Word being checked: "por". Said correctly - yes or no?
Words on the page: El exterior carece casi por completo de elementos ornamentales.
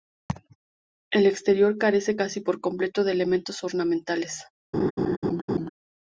yes